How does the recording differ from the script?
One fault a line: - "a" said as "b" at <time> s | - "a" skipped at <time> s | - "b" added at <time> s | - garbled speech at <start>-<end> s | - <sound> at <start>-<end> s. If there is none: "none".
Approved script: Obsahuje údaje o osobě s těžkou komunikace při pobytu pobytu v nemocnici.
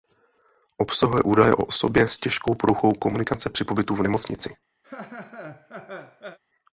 - "poruchou" added at 2.6 s
- "pobytu" skipped at 4.0 s
- laugh at 4.8-6.4 s